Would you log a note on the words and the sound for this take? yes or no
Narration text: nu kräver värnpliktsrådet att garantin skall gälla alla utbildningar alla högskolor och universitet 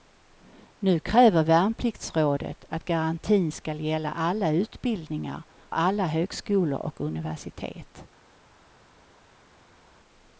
no